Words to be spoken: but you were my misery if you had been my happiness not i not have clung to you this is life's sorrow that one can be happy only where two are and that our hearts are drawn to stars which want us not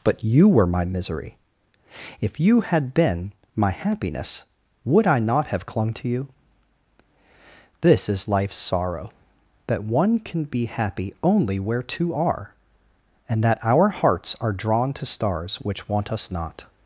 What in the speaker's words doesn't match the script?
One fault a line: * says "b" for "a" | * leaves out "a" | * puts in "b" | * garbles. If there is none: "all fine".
* says "would" for "not"